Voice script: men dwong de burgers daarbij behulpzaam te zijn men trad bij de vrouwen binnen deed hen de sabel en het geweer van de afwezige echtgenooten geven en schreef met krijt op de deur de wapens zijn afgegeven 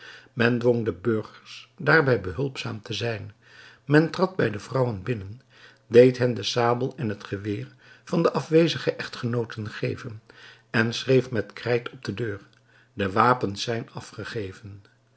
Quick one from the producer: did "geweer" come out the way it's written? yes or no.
yes